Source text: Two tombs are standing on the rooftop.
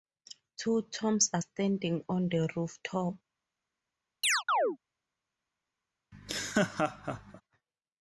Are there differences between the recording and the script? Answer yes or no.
no